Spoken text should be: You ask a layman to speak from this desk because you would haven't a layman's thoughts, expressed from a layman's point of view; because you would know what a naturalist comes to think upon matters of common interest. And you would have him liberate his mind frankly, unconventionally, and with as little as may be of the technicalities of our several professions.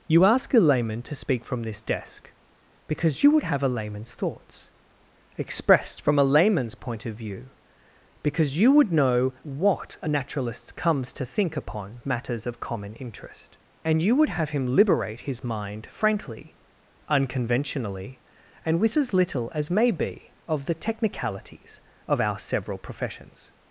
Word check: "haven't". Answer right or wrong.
wrong